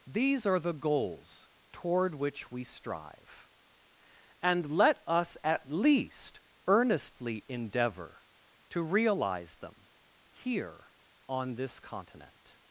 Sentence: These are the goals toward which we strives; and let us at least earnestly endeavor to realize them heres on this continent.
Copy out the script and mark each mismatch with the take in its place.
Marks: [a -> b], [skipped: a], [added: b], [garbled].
These are the goals toward which we [strives; -> strive] and let us at least earnestly endeavor to realize them [heres -> here] on this continent.